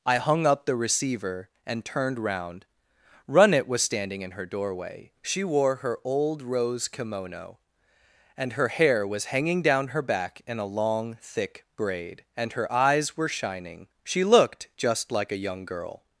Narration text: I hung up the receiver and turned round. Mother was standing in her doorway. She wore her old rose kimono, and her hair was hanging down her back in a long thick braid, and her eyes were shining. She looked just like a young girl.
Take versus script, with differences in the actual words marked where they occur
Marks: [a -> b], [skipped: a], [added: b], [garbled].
I hung up the receiver and turned round. [Mother -> Runnet] was standing in her doorway. She wore her old rose kimono, and her hair was hanging down her back in a long thick braid, and her eyes were shining. She looked just like a young girl.